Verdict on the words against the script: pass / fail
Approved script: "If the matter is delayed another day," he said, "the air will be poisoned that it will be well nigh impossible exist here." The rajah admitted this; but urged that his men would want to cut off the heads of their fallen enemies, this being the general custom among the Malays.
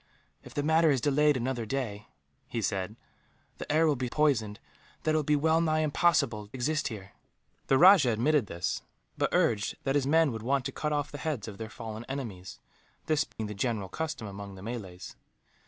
pass